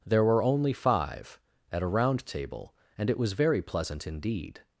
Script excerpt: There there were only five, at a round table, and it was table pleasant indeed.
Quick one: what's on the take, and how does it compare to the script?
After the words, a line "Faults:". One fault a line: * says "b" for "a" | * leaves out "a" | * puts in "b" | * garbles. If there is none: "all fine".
There were only five, at a round table, and it was very pleasant indeed.
Faults:
* leaves out "there"
* says "very" for "table"